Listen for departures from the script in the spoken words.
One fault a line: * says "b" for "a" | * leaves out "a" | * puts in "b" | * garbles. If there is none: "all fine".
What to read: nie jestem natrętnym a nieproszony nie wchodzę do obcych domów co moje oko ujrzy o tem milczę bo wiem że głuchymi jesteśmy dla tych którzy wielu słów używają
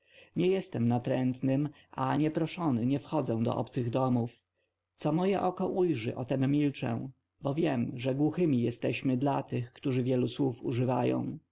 all fine